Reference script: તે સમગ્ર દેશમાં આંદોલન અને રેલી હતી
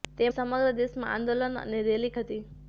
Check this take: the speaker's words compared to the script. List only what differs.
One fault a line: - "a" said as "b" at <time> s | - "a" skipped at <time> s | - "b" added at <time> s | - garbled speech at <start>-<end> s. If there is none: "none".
none